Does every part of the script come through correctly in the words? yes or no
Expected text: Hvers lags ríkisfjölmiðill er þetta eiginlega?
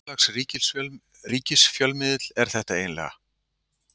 yes